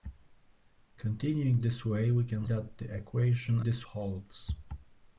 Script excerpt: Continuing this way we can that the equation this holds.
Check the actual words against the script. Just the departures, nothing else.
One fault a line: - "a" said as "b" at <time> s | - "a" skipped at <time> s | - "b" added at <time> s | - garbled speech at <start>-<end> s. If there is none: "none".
none